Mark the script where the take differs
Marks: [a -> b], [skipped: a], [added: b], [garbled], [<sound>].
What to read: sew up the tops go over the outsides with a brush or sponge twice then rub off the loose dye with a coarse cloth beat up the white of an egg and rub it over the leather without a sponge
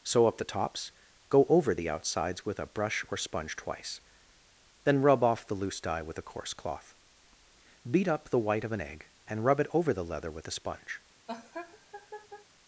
sew up the tops go over the outsides with a brush or sponge twice then rub off the loose dye with a coarse cloth beat up the white of an egg and rub it over the leather [without -> with] a sponge [laugh]